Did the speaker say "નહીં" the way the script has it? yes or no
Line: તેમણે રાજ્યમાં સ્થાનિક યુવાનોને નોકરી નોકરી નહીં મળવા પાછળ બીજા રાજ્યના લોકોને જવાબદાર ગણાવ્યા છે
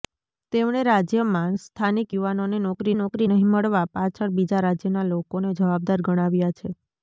yes